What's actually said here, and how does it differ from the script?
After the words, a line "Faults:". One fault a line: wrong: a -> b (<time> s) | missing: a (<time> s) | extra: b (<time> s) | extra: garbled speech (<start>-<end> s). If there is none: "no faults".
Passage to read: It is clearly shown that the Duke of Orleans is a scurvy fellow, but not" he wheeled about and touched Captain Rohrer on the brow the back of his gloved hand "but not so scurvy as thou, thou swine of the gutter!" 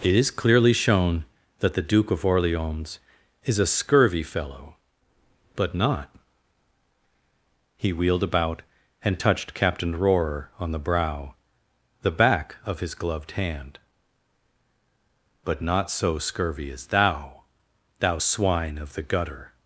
It is clearly shown that the Duke of Orleans is a scurvy fellow, but not" he wheeled about and touched Captain Rohrer on the brow the back of his gloved hand "but not so scurvy as thou, thou swine of the gutter!"
Faults:
no faults